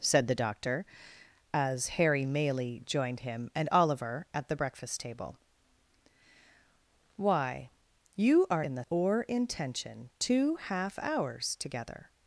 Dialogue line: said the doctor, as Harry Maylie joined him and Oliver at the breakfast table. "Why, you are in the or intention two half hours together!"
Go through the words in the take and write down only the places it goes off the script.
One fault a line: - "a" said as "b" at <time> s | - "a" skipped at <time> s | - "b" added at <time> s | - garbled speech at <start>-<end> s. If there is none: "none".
none